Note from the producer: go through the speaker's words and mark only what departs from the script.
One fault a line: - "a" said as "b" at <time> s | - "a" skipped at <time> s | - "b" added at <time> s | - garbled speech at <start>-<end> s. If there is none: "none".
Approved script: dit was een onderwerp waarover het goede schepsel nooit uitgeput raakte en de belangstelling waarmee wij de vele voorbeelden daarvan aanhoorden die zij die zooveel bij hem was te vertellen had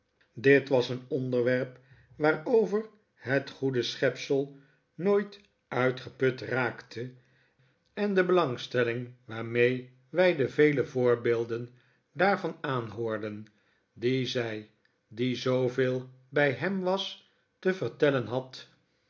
none